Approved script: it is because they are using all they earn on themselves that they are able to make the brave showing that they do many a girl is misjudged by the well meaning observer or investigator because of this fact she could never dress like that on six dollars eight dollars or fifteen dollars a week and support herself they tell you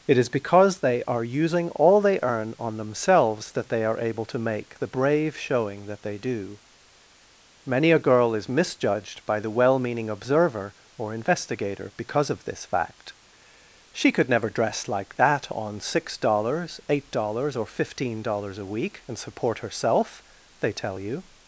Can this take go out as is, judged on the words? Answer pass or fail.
pass